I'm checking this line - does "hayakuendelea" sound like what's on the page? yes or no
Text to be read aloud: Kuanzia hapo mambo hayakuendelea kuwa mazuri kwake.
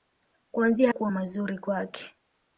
no